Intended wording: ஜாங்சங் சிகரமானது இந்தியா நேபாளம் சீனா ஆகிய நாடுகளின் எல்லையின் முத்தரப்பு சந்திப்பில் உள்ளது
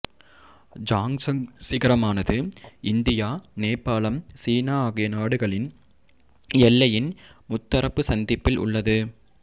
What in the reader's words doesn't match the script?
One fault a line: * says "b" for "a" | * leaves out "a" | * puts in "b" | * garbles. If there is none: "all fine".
all fine